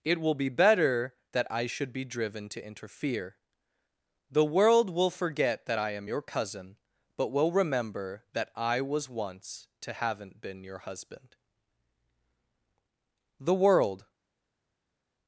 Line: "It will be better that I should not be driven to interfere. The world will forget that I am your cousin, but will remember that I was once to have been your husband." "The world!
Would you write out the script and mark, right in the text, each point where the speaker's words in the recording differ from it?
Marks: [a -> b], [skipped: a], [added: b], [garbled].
"It will be better that I should [skipped: not] be driven to interfere. The world will forget that I am your cousin, but will remember that I was once to [have -> haven't] been your husband." "The world!